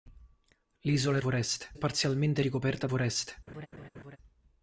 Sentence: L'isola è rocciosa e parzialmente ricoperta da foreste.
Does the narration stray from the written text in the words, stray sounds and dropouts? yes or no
yes